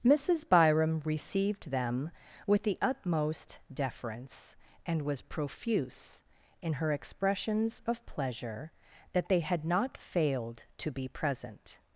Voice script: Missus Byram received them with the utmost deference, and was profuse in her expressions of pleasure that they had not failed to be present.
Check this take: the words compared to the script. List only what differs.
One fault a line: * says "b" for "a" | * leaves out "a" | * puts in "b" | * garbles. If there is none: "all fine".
all fine